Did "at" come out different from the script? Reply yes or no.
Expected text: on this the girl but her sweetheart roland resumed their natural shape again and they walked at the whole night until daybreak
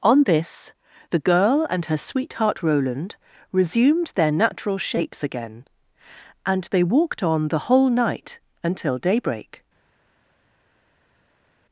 yes